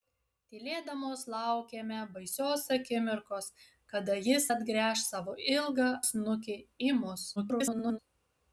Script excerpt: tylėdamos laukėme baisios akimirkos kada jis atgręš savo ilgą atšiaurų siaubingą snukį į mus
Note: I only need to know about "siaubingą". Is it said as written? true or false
false